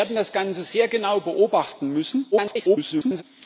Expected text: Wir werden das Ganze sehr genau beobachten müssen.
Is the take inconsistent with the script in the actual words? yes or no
yes